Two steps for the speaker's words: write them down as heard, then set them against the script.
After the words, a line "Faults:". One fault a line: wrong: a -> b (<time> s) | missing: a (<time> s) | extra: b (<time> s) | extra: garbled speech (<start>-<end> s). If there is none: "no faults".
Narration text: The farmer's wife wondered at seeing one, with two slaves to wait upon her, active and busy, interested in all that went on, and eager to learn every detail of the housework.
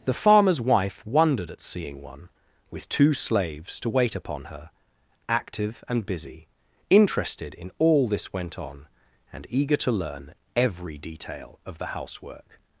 The farmer's wife wondered at seeing one, with two slaves to wait upon her, active and busy, interested in all this went on, and eager to learn every detail of the housework.
Faults:
wrong: that -> this (8.1 s)